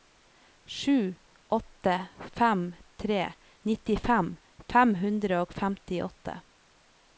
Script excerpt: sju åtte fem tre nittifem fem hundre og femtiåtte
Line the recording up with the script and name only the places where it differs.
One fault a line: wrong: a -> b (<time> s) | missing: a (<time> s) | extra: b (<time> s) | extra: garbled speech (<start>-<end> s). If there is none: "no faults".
no faults